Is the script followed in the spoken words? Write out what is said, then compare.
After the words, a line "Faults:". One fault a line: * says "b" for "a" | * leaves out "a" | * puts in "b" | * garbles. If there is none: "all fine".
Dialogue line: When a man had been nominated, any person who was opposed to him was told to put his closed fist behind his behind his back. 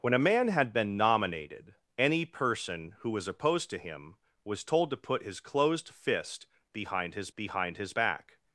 When a man had been nominated, any person who was opposed to him was told to put his closed fist behind his behind his back.
Faults:
all fine